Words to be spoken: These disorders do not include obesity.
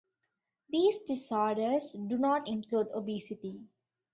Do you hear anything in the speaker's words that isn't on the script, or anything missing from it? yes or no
no